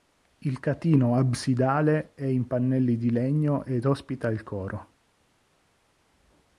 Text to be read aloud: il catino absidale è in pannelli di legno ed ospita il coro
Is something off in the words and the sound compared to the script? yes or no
no